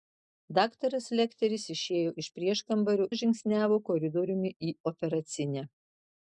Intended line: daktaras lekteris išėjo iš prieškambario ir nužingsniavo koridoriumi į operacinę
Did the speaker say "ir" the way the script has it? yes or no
no